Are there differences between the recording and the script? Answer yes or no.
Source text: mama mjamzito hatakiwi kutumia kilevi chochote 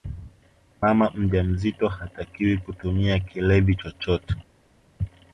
no